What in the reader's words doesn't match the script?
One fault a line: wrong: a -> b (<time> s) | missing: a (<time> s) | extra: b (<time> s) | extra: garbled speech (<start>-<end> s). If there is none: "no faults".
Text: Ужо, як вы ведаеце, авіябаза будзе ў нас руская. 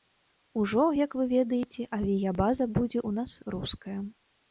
no faults